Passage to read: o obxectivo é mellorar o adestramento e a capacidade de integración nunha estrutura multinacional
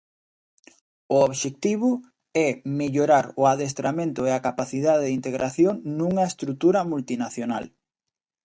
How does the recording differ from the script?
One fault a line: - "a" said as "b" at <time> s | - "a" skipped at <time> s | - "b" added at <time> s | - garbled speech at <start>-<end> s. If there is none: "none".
none